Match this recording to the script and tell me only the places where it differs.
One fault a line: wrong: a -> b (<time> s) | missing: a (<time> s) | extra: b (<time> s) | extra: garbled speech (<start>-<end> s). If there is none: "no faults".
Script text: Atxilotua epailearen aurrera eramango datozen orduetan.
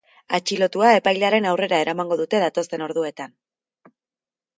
extra: dute (2.2 s)